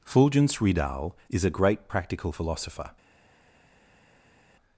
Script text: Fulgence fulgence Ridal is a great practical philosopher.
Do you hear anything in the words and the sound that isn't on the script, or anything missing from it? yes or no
yes